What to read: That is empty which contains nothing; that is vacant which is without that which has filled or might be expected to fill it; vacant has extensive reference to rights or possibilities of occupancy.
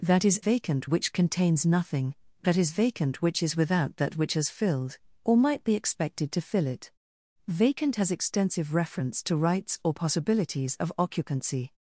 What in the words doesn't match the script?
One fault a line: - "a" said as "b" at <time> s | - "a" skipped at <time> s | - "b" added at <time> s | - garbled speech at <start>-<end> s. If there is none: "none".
- "empty" said as "vacant" at 0.4 s